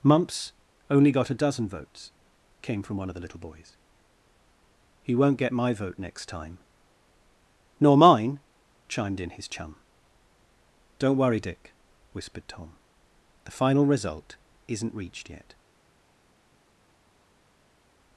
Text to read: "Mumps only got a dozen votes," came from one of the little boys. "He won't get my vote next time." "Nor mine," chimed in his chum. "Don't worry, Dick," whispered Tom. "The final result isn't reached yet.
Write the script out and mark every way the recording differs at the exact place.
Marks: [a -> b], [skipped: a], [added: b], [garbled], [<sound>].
"Mumps only got a dozen votes," came from one of the little boys. "He won't get my vote next time." "Nor mine," chimed in his chum. "Don't worry, Dick," whispered Tom. "The final result isn't reached yet.